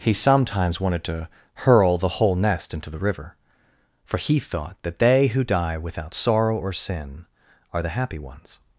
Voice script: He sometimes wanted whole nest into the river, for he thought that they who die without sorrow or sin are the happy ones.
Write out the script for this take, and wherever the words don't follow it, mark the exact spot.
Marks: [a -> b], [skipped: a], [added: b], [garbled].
He sometimes wanted [added: to hurl the] whole nest into the river, for he thought that they who die without sorrow or sin are the happy ones.